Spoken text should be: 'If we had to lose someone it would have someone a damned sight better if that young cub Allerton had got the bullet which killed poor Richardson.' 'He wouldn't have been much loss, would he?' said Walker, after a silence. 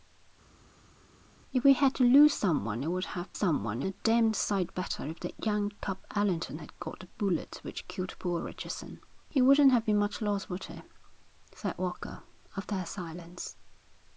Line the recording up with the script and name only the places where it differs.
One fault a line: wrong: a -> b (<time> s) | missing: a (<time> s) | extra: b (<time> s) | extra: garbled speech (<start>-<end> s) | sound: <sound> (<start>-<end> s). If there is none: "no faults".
no faults